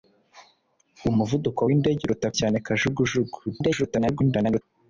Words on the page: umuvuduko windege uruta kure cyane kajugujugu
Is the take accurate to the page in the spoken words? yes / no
no